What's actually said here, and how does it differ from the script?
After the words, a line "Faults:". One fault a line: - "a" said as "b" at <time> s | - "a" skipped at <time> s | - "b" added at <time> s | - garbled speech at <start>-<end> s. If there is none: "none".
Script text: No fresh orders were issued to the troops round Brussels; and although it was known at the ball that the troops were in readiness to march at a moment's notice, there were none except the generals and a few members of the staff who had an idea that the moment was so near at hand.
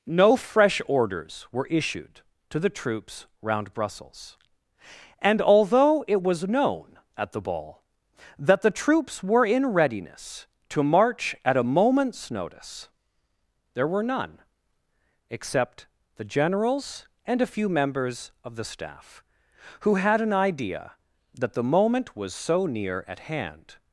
No fresh orders were issued to the troops round Brussels; and although it was known at the ball that the troops were in readiness to march at a moment's notice, there were none except the generals and a few members of the staff who had an idea that the moment was so near at hand.
Faults:
none